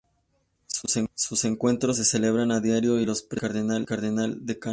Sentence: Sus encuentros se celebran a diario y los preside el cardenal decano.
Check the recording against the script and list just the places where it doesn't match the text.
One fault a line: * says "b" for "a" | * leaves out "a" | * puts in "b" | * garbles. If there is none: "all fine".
all fine